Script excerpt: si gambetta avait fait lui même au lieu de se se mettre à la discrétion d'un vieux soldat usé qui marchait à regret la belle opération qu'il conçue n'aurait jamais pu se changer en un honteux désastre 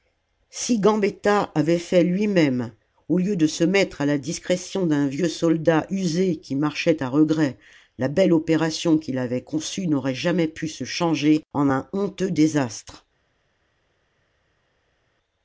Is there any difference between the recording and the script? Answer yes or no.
yes